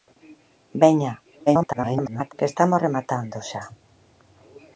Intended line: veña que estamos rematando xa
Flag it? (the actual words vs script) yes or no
yes